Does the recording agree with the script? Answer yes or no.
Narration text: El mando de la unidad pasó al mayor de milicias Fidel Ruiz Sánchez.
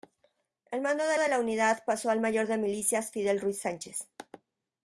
no